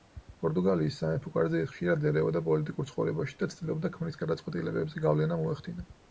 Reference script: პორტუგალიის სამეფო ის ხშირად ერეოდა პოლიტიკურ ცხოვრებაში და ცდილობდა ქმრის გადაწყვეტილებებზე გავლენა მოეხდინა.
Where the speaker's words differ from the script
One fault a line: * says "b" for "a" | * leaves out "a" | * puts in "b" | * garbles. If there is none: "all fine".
* puts in "კარზე"